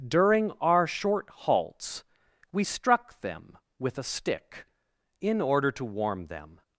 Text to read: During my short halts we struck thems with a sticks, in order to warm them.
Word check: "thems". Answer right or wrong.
wrong